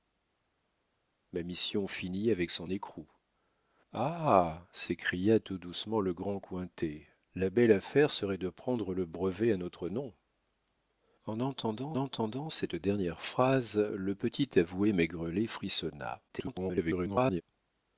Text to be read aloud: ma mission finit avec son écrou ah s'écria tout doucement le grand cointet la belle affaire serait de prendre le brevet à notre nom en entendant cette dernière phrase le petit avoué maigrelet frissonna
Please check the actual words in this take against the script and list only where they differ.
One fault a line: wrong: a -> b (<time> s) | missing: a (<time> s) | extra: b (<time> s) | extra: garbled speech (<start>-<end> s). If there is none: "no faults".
extra: entendant (12.0 s)
extra: garbled speech (16.3-17.4 s)